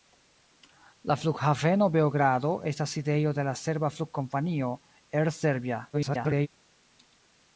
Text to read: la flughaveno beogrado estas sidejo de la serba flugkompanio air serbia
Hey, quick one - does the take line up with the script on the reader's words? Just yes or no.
no